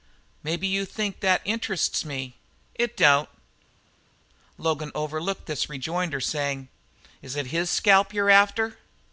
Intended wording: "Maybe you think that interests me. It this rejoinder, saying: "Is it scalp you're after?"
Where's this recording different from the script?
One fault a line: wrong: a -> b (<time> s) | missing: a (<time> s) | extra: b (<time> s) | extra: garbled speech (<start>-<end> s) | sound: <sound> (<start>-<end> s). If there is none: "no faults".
extra: don't Logan overlooked (3.0 s)
extra: his (7.5 s)